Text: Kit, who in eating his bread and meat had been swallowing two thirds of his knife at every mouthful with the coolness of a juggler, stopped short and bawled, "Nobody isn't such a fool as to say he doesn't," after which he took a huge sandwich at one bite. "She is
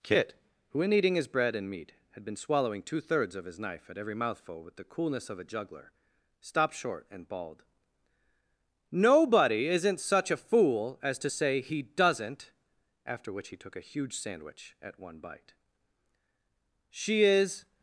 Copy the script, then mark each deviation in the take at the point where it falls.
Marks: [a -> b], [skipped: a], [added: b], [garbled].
Kit, who in eating his bread and meat had been swallowing two thirds of his knife at every mouthful with the coolness of a juggler, stopped short and bawled, "Nobody isn't such a fool as to say he doesn't," after which he took a huge sandwich at one bite. "She is